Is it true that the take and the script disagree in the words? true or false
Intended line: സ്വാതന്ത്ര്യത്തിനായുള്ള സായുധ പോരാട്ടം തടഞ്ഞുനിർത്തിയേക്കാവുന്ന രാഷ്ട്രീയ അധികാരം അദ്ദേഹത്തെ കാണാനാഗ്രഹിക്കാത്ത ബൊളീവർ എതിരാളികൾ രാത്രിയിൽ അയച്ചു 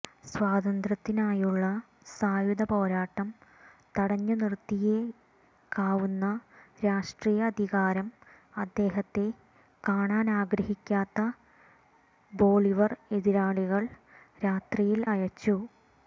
false